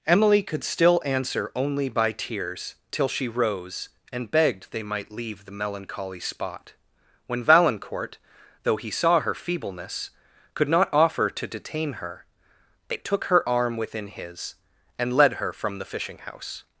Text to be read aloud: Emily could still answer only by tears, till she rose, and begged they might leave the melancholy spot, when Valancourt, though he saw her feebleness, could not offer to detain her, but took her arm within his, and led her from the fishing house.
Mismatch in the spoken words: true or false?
true